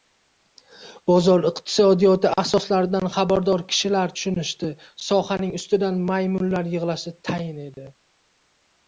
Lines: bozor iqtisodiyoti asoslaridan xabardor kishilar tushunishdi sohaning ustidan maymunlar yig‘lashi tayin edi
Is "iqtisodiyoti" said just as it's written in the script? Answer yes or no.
yes